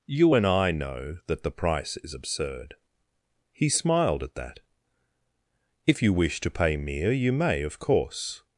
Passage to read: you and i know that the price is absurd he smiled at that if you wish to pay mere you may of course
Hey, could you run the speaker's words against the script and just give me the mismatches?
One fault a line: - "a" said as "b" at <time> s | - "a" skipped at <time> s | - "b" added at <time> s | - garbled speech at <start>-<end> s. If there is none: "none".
none